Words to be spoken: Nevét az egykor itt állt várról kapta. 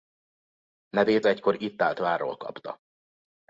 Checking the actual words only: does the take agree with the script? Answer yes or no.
no